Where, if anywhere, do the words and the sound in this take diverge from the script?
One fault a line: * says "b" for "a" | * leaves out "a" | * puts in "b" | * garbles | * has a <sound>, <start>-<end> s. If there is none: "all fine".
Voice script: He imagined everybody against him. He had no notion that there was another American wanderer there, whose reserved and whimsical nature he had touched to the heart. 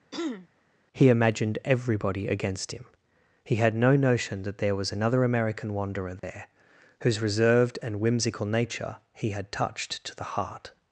* has a throat clearing, 0.1-0.5 s
* has a dropout, 6.2-6.2 s